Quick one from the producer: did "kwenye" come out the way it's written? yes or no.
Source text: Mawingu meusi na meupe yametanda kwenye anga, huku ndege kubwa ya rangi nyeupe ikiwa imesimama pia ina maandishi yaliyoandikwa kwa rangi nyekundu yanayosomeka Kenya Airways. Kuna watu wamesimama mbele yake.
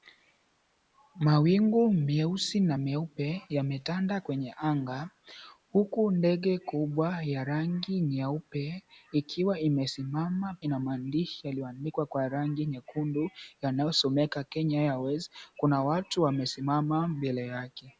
yes